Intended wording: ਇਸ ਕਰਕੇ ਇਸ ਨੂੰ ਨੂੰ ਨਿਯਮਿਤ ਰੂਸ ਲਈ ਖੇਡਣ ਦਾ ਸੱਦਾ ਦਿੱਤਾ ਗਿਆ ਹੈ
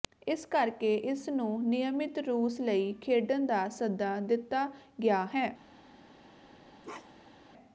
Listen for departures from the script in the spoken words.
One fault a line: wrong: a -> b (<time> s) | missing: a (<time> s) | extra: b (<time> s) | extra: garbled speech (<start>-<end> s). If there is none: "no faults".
missing: ਨੂੰ (1.6 s)